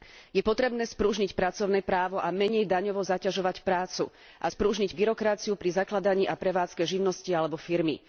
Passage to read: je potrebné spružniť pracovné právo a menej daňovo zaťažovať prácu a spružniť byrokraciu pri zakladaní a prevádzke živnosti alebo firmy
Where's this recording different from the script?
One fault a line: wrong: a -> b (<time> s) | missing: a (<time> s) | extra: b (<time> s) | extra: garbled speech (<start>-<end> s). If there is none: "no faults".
no faults